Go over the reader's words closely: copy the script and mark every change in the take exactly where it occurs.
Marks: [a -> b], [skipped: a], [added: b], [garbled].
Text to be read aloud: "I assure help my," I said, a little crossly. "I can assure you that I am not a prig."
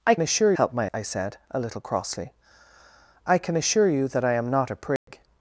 "I assure help my," I said, a little crossly. "I can assure you that I am not a prig."